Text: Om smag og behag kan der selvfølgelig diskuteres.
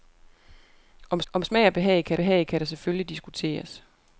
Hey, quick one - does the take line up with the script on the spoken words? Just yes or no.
no